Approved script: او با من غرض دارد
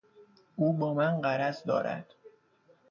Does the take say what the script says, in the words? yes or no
yes